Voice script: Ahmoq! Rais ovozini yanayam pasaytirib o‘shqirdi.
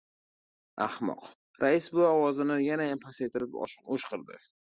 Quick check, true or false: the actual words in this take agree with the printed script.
false